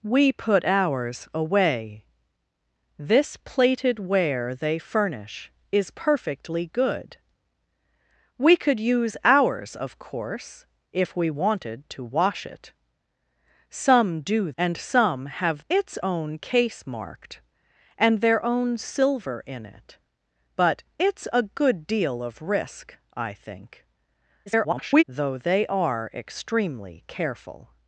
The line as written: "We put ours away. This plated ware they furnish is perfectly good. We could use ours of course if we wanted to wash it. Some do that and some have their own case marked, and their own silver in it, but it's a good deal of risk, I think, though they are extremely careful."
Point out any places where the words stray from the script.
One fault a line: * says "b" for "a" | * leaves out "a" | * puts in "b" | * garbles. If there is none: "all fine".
* leaves out "that"
* says "it's" for "their"
* garbles